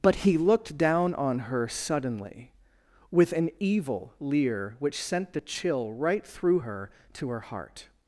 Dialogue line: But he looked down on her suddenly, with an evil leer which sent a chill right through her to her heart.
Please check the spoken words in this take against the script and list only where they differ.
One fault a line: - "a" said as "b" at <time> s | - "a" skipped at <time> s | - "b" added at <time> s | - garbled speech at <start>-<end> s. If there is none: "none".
- "a" said as "the" at 5.3 s